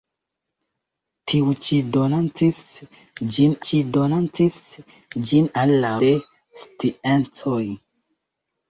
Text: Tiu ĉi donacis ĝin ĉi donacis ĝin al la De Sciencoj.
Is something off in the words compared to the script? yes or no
no